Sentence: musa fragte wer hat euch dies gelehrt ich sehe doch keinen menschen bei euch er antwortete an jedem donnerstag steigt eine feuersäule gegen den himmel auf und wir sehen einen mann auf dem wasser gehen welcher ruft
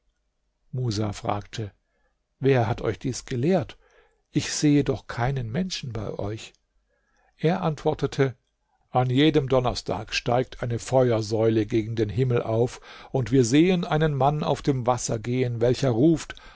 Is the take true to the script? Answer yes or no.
yes